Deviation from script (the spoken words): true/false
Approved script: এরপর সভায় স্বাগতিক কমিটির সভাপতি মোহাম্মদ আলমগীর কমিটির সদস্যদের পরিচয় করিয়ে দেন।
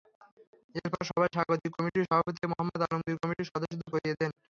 true